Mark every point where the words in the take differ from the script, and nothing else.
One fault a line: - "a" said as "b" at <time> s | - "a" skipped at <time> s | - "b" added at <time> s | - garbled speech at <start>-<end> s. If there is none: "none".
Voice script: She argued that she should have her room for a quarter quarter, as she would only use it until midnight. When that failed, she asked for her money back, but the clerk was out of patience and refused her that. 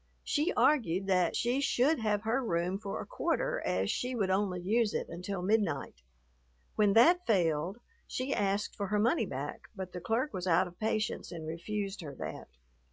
- "quarter" skipped at 3.6 s